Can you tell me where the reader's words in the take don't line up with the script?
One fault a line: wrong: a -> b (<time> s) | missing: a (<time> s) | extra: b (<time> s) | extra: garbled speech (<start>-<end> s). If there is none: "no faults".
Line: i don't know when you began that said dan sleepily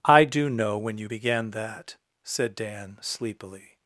wrong: don't -> do (0.2 s)